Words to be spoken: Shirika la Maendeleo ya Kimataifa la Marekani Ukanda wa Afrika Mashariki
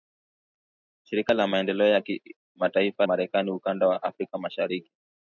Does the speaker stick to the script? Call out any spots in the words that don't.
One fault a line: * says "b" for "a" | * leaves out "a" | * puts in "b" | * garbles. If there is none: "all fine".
* leaves out "la"